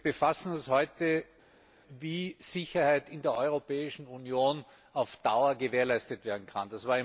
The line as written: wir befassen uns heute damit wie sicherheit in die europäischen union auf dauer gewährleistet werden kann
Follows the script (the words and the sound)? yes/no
no